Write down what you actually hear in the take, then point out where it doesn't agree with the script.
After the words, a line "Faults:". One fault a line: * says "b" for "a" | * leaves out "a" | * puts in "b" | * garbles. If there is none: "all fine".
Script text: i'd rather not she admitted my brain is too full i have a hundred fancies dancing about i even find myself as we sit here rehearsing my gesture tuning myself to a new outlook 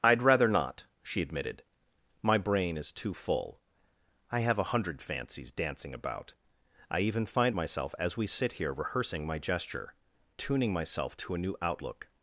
i'd rather not she admitted my brain is too full i have a hundred fancies dancing about i even find myself as we sit here rehearsing my gesture tuning myself to a new outlook
Faults:
all fine